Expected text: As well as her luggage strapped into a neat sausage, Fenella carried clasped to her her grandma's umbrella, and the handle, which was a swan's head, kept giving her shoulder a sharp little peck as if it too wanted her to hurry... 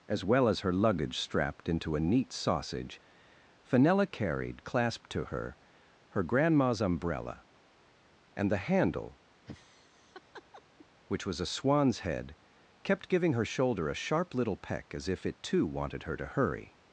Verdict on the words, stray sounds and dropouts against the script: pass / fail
fail